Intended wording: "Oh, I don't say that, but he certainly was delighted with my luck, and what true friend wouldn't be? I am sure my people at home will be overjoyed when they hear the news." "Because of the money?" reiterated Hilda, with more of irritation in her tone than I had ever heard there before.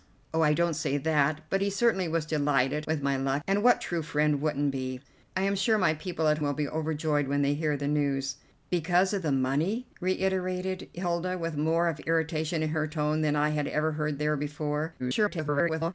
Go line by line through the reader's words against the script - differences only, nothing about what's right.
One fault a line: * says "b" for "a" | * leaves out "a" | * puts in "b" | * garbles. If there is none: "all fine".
* leaves out "home"
* garbles